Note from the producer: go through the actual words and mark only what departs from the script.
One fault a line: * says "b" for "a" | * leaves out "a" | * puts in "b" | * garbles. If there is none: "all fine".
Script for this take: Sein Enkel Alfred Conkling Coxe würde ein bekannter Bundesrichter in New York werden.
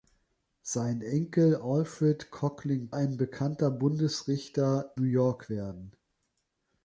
* leaves out "Coxe würde"
* leaves out "in"